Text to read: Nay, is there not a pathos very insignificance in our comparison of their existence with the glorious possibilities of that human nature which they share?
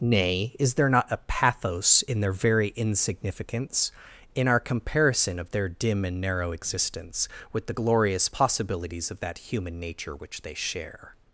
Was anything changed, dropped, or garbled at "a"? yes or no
no